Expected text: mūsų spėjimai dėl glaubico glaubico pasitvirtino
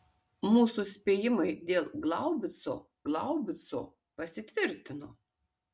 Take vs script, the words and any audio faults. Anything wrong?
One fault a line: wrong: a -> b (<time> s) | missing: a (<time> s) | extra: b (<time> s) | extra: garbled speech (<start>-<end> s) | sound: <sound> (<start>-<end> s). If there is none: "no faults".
no faults